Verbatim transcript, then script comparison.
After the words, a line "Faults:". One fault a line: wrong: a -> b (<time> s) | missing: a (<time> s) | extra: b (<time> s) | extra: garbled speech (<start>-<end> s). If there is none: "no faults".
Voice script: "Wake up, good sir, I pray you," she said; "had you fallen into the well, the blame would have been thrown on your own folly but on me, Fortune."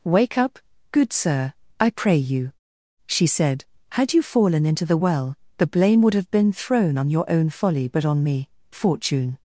"Wake up, good sir, I pray you," she said; "had you fallen into the well, the blame would have been thrown on your own folly but on me, Fortune."
Faults:
no faults